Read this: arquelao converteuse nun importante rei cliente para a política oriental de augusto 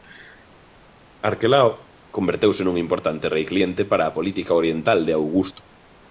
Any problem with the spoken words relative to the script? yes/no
no